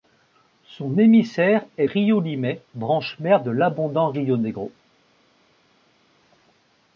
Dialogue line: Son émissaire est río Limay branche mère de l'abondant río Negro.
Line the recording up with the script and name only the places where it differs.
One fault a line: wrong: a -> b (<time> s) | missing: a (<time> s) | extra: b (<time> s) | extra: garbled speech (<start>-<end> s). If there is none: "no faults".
no faults